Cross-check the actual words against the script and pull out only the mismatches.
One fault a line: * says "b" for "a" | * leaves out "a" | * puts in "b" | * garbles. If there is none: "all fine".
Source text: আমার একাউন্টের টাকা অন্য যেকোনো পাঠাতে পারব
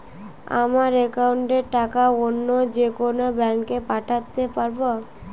* puts in "ব্যাঙ্কে"